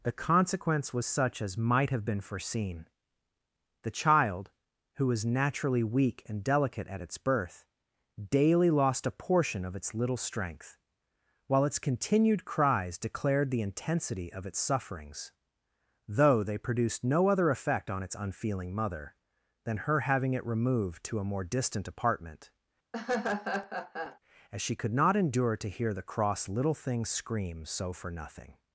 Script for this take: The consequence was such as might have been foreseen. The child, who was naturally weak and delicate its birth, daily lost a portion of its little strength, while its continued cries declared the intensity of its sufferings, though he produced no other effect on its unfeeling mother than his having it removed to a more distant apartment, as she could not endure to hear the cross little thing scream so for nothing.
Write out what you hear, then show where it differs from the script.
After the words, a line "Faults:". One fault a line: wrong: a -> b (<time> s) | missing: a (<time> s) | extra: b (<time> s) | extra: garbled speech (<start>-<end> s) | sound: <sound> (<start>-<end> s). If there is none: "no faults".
The consequence was such as might have been foreseen. The child, who was naturally weak and delicate at its birth, daily lost a portion of its little strength, while its continued cries declared the intensity of its sufferings, though they produced no other effect on its unfeeling mother than her having it removed to a more distant apartment, as she could not endure to hear the cross little thing scream so for nothing.
Faults:
extra: at (6.9 s)
wrong: he -> they (16.4 s)
wrong: his -> her (19.8 s)
sound: laugh (22.9-24.2 s)